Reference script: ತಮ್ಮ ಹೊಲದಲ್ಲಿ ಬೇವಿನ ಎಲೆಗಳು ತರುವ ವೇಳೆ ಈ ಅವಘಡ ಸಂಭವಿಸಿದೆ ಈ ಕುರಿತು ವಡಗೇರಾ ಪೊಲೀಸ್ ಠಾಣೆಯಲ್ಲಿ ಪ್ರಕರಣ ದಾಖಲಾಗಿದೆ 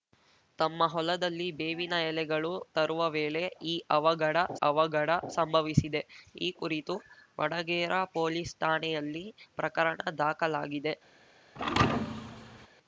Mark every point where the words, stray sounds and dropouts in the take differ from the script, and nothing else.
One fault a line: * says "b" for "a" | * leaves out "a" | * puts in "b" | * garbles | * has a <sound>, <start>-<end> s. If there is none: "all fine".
* puts in "ಅವಘಡ"
* has a thud, 11.6-12.7 s